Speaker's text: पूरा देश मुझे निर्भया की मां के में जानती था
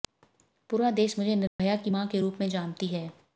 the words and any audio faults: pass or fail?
fail